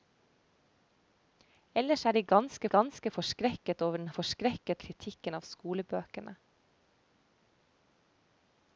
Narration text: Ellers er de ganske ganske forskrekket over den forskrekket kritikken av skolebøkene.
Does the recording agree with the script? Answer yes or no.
yes